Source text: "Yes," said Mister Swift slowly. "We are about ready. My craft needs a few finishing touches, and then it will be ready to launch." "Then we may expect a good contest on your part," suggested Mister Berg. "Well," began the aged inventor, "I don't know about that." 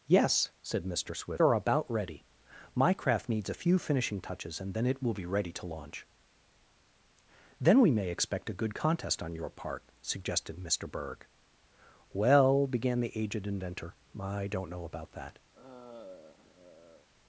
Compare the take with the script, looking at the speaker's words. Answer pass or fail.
fail